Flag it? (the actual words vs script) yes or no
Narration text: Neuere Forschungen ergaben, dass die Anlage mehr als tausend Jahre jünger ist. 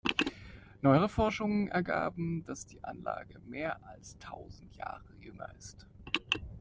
no